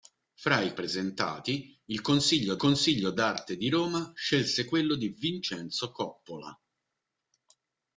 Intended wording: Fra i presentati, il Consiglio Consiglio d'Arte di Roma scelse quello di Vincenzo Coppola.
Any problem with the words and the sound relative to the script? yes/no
no